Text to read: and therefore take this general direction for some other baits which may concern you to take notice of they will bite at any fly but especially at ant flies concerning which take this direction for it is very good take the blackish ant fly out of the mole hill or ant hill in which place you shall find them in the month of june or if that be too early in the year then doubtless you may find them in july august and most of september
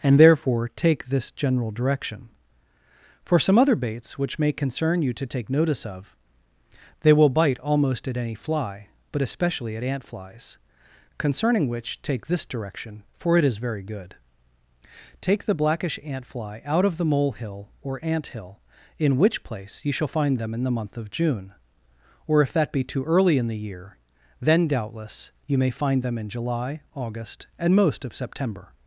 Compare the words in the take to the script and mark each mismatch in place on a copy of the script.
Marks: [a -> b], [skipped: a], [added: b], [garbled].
and therefore take this general direction for some other baits which may concern you to take notice of they will bite [added: almost] at any fly but especially at ant flies concerning which take this direction for it is very good take the blackish ant fly out of the mole hill or ant hill in which place you shall find them in the month of june or if that be too early in the year then doubtless you may find them in july august and most of september